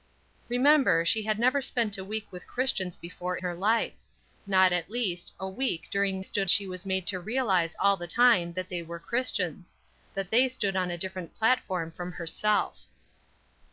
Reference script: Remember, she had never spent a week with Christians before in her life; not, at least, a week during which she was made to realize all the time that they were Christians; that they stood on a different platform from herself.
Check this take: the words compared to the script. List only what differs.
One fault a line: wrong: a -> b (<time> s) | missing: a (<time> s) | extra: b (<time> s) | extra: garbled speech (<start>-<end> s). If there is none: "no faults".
missing: in (3.4 s)
wrong: which -> stood (6.2 s)